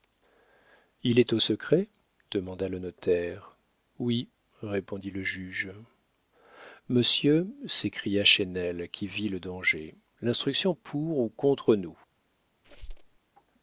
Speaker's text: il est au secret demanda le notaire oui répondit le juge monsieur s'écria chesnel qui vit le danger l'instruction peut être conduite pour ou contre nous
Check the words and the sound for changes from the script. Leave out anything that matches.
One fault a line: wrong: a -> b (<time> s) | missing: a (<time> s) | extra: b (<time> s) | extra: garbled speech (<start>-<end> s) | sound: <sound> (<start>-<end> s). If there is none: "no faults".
missing: peut être conduite (10.7 s)
sound: squeak (12.6-13.2 s)